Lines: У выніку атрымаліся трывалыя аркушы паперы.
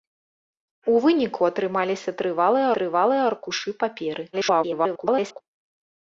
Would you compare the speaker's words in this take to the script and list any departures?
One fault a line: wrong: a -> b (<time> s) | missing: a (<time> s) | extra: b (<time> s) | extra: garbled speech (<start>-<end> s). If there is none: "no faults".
extra: трывалыя (2.8 s)
extra: garbled speech (4.3-5.4 s)